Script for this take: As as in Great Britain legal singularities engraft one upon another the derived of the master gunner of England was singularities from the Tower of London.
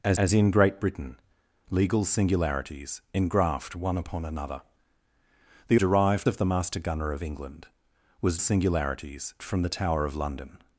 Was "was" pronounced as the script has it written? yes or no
yes